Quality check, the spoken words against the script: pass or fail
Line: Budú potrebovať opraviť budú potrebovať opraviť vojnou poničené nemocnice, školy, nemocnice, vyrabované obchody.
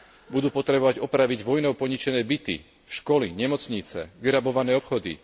fail